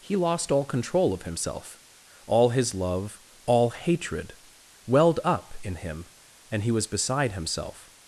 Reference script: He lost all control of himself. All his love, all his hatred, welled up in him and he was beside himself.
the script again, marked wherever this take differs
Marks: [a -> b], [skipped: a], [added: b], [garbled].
He lost all control of himself. All his love, all [skipped: his] hatred, welled up in him and he was beside himself.